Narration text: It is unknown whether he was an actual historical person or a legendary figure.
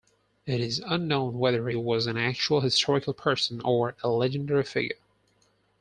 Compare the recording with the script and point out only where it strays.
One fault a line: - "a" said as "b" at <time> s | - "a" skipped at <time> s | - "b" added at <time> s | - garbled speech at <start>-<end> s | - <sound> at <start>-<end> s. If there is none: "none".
- "he" skipped at 1.7 s